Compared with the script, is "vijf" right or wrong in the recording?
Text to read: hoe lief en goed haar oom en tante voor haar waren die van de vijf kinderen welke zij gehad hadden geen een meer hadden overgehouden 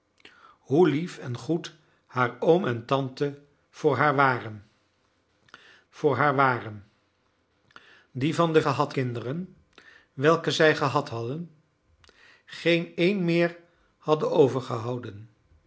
wrong